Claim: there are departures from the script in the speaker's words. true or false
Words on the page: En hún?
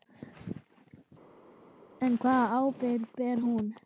true